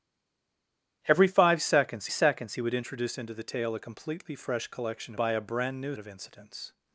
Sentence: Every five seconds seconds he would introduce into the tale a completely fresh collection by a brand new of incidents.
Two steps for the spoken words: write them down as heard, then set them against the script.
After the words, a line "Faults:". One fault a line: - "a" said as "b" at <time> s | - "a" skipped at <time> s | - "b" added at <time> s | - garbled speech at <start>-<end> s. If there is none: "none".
Every five seconds seconds he would introduce into the tale a completely fresh collection by a brand new of incidents.
Faults:
none